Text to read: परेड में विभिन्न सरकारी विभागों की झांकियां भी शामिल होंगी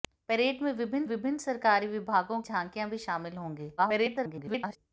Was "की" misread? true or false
true